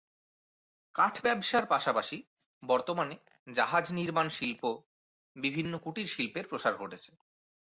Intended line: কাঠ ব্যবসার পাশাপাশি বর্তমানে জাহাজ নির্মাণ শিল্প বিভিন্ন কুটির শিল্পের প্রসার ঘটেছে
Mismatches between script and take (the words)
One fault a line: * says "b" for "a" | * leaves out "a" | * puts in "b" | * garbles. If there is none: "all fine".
all fine